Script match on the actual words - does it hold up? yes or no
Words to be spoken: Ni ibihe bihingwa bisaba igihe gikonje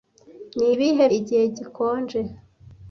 no